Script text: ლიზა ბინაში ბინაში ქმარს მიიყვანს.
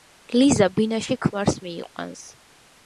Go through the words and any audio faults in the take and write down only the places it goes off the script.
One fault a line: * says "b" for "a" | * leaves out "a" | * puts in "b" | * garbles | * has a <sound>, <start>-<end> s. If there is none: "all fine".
* leaves out "ბინაში"